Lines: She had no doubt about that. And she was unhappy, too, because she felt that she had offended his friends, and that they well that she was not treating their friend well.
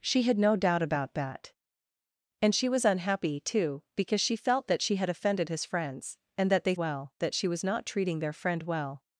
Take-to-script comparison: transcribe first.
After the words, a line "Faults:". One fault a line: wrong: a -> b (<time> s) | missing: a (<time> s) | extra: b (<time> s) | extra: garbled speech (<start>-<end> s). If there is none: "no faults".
She had no doubt about that. And she was unhappy, too, because she felt that she had offended his friends, and that they well that she was not treating their friend well.
Faults:
no faults